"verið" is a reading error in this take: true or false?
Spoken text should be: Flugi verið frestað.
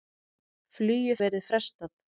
false